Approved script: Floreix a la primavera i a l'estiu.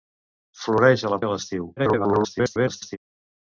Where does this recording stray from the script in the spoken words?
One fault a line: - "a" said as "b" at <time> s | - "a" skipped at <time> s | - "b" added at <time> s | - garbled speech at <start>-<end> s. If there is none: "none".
- "primavera" skipped at 1.2 s
- garbled speech at 1.8-3.0 s